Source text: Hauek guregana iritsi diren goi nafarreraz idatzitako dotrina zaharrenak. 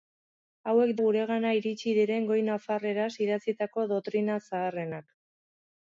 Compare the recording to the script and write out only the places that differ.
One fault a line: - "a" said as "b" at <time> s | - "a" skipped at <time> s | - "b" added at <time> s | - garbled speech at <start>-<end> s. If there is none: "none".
none